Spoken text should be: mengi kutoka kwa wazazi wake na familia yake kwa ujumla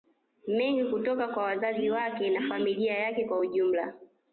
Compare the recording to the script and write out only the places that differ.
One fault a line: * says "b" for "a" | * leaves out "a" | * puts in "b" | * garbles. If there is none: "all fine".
all fine